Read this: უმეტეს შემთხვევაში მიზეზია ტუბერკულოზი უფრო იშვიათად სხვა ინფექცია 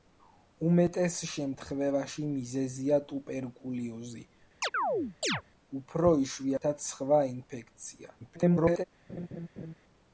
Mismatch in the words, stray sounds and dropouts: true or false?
true